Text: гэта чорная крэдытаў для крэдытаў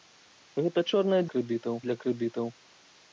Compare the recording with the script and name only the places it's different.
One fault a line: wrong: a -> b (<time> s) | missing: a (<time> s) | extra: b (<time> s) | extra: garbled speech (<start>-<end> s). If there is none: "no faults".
no faults